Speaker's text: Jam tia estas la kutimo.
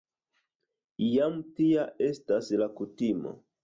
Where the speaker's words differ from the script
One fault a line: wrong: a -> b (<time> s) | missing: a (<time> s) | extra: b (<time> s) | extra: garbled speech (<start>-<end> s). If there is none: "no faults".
no faults